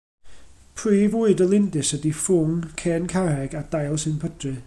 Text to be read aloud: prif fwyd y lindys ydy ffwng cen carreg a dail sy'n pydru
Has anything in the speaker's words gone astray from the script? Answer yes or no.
no